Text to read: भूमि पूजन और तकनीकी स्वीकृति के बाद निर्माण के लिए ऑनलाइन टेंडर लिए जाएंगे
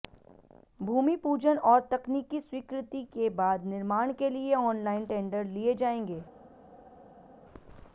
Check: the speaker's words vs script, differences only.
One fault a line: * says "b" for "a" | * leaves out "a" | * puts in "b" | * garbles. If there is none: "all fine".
all fine